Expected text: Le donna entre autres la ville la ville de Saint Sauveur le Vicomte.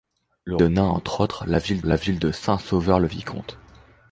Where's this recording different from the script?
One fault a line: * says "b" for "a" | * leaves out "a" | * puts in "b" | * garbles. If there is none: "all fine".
all fine